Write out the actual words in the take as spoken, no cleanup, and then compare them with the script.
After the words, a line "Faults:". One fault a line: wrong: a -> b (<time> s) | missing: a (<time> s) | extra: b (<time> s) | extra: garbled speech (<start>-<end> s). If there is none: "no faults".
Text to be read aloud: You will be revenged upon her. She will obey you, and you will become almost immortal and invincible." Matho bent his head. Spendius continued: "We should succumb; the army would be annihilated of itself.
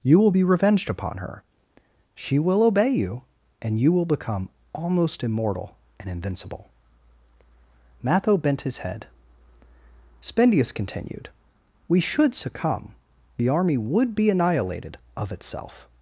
You will be revenged upon her. She will obey you, and you will become almost immortal and invincible." Matho bent his head. Spendius continued: "We should succumb; the army would be annihilated of itself.
Faults:
no faults